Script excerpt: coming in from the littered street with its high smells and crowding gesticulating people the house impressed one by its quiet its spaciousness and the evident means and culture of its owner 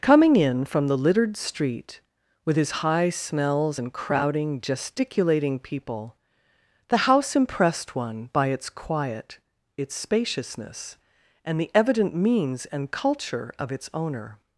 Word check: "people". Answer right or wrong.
right